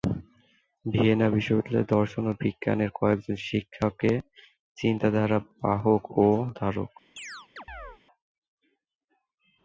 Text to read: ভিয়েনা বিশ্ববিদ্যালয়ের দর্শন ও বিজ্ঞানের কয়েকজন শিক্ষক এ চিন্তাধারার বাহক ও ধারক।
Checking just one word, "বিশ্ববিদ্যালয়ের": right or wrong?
right